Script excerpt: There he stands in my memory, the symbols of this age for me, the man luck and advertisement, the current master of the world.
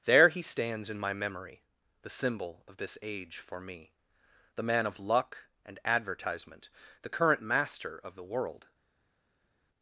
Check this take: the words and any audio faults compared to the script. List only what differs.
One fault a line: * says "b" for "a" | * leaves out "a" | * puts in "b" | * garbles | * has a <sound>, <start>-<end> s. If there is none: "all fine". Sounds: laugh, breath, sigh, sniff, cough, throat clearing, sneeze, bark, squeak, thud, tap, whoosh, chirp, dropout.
* says "symbol" for "symbols"
* puts in "of"